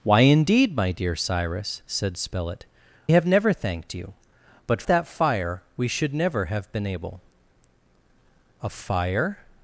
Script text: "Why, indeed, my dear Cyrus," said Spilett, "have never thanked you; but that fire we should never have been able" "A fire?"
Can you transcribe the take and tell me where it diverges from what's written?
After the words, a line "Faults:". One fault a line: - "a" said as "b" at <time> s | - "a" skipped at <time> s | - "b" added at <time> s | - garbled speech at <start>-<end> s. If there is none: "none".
"Why, indeed, my dear Cyrus," said Spilett, "have never thanked you; but that fire we should never have been able" "A fire?"
Faults:
none